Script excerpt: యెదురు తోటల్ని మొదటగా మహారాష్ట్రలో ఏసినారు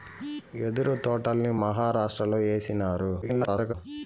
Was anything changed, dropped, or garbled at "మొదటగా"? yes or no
yes